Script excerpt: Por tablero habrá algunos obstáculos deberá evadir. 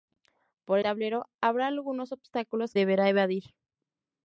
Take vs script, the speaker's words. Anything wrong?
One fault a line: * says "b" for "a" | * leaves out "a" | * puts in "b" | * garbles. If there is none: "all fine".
all fine